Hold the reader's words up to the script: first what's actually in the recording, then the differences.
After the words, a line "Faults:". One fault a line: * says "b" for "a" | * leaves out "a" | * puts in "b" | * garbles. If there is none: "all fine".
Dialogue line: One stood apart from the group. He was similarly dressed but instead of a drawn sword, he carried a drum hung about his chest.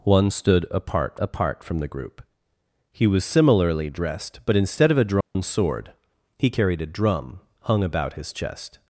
One stood apart apart from the group. He was similarly dressed but instead of a drawn sword, he carried a drum hung about his chest.
Faults:
* puts in "apart"